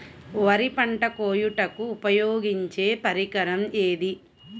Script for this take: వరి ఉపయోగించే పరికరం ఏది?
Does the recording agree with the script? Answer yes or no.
no